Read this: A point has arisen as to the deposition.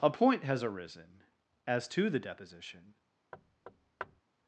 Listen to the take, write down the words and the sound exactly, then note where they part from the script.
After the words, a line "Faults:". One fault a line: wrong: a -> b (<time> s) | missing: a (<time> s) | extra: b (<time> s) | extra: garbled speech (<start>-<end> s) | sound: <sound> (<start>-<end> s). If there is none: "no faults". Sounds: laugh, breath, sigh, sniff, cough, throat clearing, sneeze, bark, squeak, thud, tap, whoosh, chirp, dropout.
A point has arisen as to the deposition.
Faults:
sound: thud (3.3-4.2 s)